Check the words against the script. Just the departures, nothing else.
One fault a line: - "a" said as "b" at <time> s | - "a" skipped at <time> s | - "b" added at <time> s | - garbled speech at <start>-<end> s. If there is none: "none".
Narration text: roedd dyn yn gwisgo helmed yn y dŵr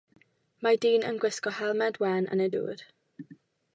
- "roedd" said as "mae" at 0.7 s
- "wen" added at 2.0 s